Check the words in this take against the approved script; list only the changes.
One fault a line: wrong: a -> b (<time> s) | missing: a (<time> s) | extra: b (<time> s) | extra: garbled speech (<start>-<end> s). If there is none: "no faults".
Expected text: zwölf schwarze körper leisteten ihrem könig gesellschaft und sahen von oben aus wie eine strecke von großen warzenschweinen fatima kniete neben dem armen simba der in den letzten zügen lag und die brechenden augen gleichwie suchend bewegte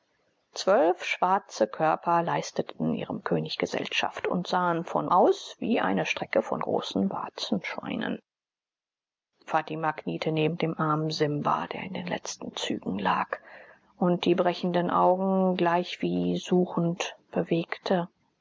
missing: oben (5.1 s)